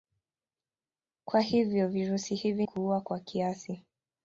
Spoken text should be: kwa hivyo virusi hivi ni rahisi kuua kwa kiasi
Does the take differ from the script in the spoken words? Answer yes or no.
yes